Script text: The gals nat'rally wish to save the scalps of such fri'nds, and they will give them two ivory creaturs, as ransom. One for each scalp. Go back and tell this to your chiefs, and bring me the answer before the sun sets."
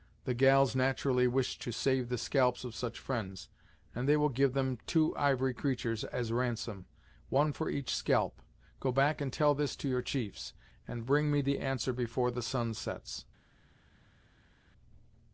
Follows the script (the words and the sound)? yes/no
yes